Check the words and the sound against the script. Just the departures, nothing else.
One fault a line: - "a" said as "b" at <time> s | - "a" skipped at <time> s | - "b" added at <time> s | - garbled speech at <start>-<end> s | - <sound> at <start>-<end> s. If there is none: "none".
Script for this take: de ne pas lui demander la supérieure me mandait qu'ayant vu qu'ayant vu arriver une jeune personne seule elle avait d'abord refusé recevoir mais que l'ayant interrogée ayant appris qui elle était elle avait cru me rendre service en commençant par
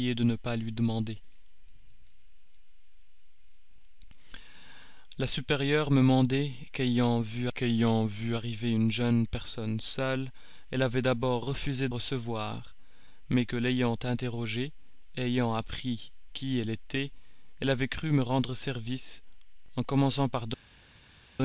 none